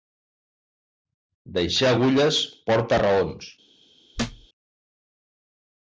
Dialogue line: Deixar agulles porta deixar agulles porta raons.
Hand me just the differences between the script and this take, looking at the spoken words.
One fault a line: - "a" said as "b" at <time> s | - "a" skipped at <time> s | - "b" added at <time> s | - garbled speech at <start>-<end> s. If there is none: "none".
- "deixar agulles porta" skipped at 3.0 s